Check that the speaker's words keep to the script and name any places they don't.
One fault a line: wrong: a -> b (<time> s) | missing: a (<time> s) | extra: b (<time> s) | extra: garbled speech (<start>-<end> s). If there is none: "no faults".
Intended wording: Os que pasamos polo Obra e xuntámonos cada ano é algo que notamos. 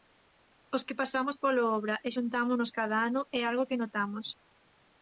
no faults